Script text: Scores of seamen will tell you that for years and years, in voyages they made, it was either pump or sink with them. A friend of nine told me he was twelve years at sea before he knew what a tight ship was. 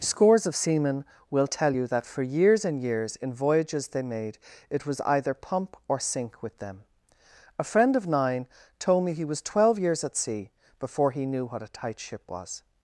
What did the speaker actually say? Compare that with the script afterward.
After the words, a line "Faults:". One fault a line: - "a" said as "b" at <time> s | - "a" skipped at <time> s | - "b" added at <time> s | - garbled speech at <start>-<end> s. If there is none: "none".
Scores of seamen will tell you that for years and years, in voyages they made, it was either pump or sink with them. A friend of nine told me he was twelve years at sea before he knew what a tight ship was.
Faults:
none